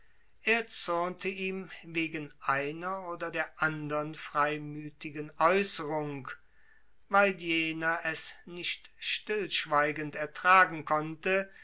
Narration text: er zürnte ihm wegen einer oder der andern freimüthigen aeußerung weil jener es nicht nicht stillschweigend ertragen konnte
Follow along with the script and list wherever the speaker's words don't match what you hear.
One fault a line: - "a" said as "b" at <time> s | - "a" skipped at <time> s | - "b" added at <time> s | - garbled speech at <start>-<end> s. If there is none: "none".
- "nicht" skipped at 8.9 s